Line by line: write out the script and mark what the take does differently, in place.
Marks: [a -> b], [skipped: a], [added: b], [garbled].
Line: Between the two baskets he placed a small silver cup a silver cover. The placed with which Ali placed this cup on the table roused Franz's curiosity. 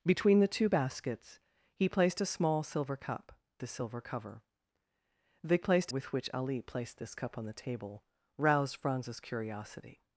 Between the two baskets he placed a small silver cup a silver cover. The placed with which Ali placed this cup on the table roused Franz's curiosity.